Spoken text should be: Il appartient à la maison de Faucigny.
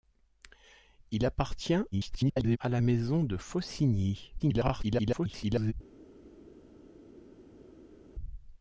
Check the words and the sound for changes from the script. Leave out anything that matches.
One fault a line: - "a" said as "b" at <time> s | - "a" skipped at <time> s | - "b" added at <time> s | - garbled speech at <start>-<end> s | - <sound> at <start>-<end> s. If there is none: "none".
- garbled speech at 1.9-2.6 s
- garbled speech at 4.4-5.7 s